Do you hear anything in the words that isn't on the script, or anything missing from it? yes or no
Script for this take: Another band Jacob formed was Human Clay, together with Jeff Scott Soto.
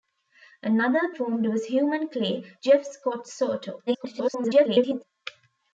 yes